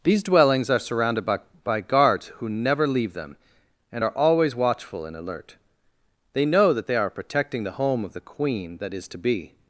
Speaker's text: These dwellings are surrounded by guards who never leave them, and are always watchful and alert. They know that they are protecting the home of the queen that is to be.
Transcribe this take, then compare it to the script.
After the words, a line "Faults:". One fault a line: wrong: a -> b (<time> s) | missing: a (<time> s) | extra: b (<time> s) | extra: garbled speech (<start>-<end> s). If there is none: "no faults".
These dwellings are surrounded by by guards who never leave them, and are always watchful and alert. They know that they are protecting the home of the queen that is to be.
Faults:
extra: by (1.6 s)